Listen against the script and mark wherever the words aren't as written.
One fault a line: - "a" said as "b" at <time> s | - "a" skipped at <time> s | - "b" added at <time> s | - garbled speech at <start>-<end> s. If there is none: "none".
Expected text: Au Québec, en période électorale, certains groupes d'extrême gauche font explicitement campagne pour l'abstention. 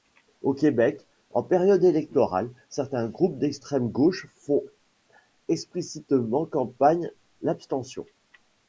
- "pour" skipped at 7.1 s